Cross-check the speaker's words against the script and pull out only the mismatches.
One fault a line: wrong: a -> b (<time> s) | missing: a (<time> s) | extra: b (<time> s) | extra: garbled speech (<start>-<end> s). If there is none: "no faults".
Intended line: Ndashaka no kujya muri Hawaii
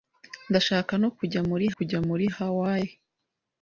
extra: kujya muri (1.7 s)